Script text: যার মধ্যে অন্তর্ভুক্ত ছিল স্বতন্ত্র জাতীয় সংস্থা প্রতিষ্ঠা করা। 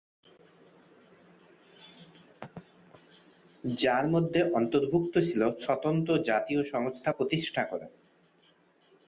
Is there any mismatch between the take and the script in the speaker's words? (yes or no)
no